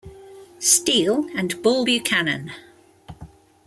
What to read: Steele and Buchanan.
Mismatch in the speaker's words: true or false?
true